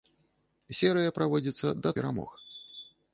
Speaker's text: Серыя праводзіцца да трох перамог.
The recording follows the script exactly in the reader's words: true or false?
false